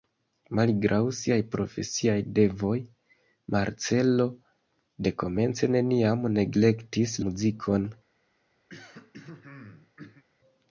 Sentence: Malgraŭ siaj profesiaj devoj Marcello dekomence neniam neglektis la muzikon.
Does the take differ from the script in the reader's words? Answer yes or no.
yes